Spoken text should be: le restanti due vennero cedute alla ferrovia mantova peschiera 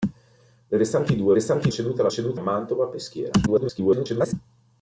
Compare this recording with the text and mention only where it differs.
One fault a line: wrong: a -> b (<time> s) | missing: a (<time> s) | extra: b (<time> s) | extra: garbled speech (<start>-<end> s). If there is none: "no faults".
wrong: vennero -> restanti (1.3 s)
wrong: ferrovia -> cedute (2.1 s)
extra: garbled speech (3.5-4.3 s)